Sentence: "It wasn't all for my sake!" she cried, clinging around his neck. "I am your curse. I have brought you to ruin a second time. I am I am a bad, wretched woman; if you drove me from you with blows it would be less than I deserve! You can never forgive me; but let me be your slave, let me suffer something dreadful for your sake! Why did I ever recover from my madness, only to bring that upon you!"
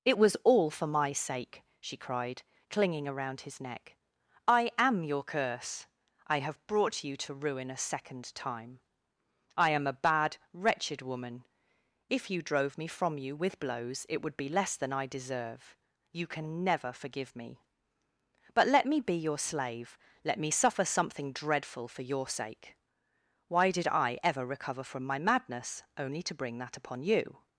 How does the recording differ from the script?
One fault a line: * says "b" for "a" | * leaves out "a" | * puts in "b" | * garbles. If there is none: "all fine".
* says "was" for "wasn't"
* leaves out "I am"